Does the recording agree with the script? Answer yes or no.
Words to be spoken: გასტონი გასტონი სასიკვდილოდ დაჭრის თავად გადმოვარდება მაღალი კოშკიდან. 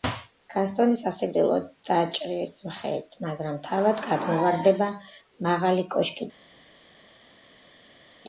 no